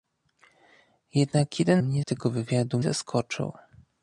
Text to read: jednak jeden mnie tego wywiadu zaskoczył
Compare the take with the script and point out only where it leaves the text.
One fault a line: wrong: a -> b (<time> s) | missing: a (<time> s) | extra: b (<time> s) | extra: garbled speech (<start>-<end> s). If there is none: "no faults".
no faults